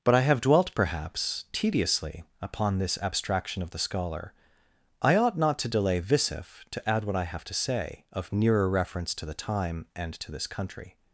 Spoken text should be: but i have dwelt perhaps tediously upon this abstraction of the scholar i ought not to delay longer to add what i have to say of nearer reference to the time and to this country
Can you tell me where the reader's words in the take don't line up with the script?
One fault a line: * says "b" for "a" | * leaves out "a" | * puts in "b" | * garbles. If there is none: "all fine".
* says "visif" for "longer"